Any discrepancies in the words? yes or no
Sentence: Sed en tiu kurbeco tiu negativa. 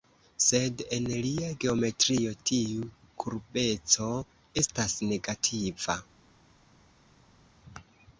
yes